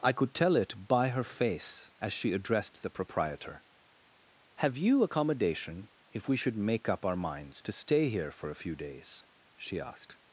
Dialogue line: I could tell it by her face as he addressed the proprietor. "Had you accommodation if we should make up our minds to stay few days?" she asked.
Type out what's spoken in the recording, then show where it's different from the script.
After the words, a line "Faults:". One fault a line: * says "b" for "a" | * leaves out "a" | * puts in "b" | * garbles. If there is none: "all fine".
I could tell it by her face as she addressed the proprietor. "Have you accommodation if we should make up our minds to stay here for a few days?" she asked.
Faults:
* says "she" for "he"
* says "Have" for "Had"
* puts in "here for a"